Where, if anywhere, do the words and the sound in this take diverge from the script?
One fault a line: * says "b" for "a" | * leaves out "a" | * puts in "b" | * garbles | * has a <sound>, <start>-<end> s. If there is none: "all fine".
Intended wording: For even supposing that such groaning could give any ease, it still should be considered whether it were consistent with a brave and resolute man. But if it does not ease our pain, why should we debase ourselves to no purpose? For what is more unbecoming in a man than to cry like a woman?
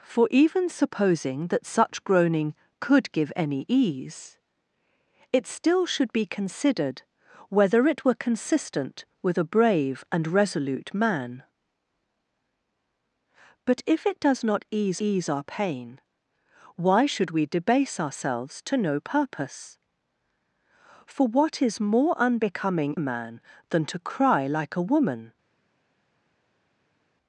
* puts in "ease"
* leaves out "in"